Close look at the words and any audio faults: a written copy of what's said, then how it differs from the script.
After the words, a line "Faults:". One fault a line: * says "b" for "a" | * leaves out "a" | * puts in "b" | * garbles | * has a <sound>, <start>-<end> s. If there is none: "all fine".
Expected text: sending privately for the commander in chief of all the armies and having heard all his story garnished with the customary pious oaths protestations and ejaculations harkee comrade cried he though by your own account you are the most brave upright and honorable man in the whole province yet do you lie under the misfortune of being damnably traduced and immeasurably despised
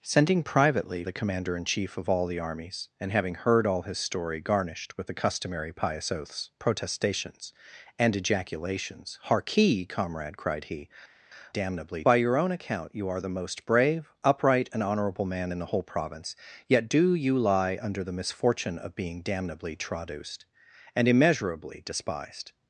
sending privately the commander in chief of all the armies and having heard all his story garnished with the customary pious oaths protestations and ejaculations harkee comrade cried he damnably by your own account you are the most brave upright and honorable man in the whole province yet do you lie under the misfortune of being damnably traduced and immeasurably despised
Faults:
* leaves out "for"
* says "damnably" for "though"